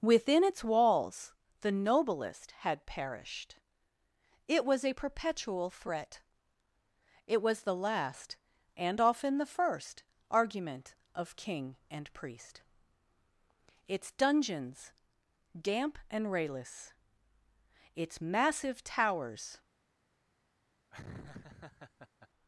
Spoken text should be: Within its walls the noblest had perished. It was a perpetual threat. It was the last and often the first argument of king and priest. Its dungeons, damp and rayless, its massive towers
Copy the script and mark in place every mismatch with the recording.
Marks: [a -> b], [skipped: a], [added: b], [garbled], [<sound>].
Within its walls the noblest had perished. It was a perpetual threat. It was the last and often the first argument of king and priest. Its dungeons, damp and rayless, its massive towers [laugh]